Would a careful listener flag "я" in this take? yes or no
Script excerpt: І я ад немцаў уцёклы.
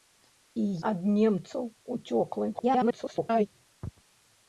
yes